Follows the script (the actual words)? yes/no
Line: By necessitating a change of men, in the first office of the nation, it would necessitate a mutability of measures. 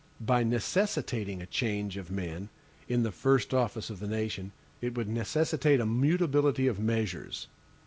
yes